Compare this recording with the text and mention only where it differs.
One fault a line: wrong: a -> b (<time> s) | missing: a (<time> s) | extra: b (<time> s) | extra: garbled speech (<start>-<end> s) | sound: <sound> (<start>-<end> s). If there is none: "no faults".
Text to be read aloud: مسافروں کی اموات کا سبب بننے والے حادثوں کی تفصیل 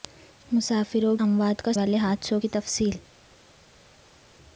missing: کی (1.1 s)
missing: سبب بننے (1.7 s)